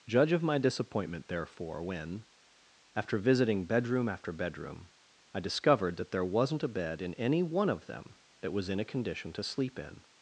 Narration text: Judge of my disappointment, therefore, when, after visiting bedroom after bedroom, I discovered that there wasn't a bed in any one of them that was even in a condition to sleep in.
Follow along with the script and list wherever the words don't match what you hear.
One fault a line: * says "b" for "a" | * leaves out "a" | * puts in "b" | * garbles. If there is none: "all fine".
* leaves out "even"